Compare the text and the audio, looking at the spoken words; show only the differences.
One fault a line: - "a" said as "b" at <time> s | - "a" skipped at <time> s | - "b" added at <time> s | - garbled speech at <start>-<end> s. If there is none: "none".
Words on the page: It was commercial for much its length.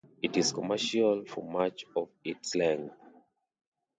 - "was" said as "is" at 0.3 s
- "of" added at 2.0 s